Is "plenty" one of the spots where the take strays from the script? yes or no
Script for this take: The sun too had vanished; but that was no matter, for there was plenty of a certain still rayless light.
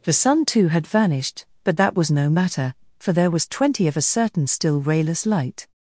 yes